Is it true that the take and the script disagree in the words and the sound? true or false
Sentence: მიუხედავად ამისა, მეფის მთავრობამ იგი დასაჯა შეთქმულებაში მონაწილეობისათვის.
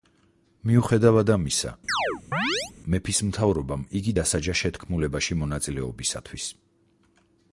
true